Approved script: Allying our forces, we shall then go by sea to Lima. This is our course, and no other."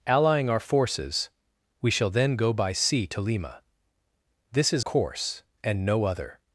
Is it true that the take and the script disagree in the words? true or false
true